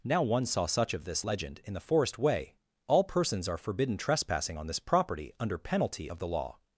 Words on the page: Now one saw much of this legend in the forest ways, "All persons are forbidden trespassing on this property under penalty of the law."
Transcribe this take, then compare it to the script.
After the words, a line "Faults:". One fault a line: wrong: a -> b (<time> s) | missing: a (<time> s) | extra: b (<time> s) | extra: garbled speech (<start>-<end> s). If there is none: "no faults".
Now one saw such of this legend in the forest way, "All persons are forbidden trespassing on this property under penalty of the law."
Faults:
wrong: much -> such (0.7 s)
wrong: ways -> way (2.2 s)